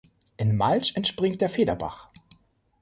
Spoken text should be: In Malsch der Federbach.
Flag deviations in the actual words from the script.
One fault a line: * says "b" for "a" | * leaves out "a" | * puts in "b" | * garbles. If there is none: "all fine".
* puts in "entspringt"